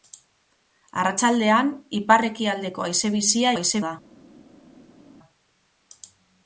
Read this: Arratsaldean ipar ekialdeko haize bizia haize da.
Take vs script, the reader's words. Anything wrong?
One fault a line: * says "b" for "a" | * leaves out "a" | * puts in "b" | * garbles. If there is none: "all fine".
all fine